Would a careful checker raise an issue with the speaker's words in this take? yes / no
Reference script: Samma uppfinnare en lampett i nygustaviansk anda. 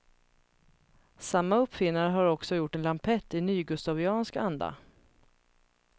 yes